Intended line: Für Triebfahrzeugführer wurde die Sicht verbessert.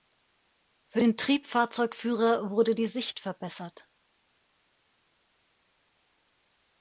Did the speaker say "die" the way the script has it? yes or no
yes